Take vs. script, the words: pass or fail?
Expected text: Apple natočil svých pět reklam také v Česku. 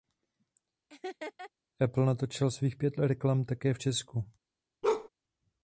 pass